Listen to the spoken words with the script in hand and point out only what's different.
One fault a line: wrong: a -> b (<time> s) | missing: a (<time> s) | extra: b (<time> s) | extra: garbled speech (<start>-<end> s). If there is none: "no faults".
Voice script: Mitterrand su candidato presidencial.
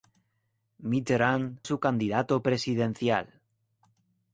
no faults